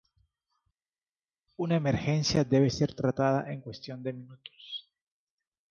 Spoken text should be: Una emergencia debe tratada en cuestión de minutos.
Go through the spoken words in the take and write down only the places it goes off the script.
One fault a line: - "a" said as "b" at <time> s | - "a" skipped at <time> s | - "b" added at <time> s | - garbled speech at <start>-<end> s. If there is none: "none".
- "ser" added at 2.7 s